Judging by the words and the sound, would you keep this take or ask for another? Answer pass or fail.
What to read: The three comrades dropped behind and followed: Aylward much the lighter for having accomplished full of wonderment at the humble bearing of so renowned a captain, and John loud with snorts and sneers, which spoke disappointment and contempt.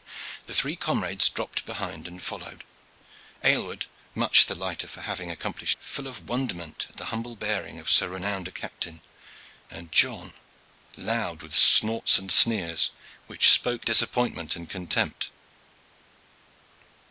pass